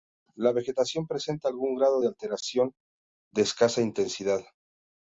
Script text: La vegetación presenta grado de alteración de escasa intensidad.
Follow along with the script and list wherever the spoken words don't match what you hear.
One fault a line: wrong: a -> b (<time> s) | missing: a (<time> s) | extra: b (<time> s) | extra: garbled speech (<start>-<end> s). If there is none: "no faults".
extra: algún (1.5 s)